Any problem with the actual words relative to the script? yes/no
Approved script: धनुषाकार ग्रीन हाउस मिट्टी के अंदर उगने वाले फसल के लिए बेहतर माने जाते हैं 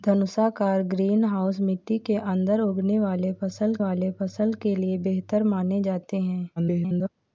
yes